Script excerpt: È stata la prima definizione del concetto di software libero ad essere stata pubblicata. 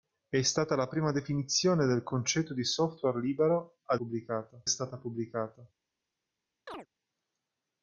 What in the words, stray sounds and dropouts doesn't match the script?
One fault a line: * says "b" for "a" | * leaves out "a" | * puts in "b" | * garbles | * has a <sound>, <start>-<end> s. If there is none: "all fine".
* says "pubblicata" for "essere"
* has a chirp, 6.7-6.9 s